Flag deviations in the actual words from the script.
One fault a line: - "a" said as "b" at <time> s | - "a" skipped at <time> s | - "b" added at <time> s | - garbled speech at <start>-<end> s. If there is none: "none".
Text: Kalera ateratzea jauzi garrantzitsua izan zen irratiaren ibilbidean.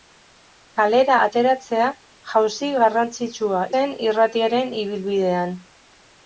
- "izan" skipped at 3.6 s